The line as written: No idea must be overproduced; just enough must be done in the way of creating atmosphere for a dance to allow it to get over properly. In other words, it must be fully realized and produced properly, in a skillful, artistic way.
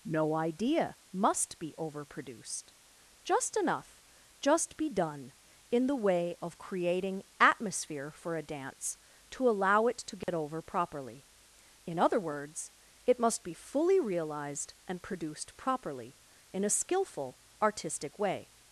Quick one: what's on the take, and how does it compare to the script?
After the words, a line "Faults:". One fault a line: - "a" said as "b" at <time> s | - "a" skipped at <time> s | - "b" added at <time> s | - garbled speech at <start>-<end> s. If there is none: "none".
No idea must be overproduced; just enough just be done in the way of creating atmosphere for a dance to allow it to get over properly. In other words, it must be fully realized and produced properly, in a skillful, artistic way.
Faults:
- "must" said as "just" at 4.4 s